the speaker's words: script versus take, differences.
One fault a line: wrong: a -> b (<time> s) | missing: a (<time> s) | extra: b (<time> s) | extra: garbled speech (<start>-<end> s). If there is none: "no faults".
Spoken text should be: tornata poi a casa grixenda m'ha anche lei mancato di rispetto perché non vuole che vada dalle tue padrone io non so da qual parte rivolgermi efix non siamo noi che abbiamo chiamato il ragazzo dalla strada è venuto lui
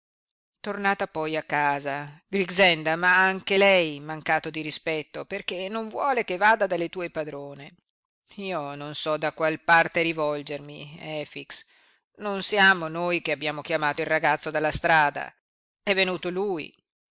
no faults